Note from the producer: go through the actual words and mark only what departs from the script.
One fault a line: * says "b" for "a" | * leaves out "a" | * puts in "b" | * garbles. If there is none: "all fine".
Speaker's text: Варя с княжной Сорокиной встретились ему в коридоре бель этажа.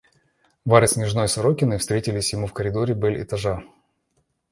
all fine